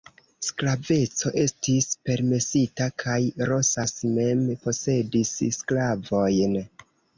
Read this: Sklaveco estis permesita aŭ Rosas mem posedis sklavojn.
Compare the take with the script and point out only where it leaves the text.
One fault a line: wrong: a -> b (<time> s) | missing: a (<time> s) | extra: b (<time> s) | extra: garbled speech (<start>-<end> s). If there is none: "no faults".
wrong: aŭ -> kaj (3.0 s)